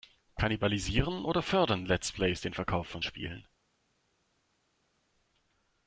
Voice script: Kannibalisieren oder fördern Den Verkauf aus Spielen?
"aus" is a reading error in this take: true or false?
true